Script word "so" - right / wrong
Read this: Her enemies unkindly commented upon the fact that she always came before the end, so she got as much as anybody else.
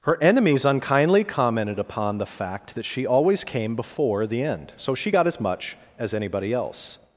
right